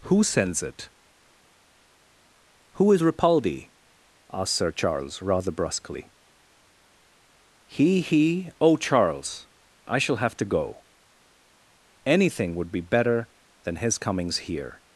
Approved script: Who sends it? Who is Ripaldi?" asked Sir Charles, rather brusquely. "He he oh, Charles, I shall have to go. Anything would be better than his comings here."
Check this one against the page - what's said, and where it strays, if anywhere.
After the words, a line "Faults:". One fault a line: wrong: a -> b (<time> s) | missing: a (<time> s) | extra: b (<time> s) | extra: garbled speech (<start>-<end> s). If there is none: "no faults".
Who sends it? Who is Ripaldi?" asked Sir Charles, rather brusquely. "He he oh, Charles, I shall have to go. Anything would be better than his comings here."
Faults:
no faults